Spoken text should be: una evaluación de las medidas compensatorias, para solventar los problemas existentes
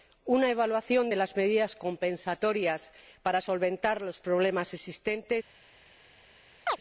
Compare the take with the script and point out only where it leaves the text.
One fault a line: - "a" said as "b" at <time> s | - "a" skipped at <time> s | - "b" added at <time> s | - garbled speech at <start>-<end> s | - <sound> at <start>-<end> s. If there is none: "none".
- chirp at 6.7-6.8 s